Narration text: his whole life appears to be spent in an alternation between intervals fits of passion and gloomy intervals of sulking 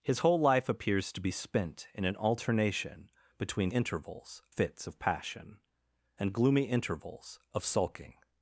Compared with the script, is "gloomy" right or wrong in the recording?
right